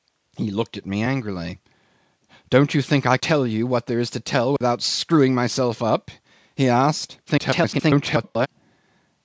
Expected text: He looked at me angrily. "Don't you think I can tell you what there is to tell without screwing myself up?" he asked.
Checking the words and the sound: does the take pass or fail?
fail